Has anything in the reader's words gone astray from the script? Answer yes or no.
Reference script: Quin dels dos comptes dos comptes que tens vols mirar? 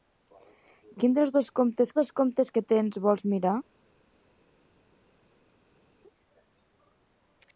no